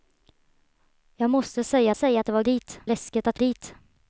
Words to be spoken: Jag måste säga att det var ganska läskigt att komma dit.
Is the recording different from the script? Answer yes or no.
yes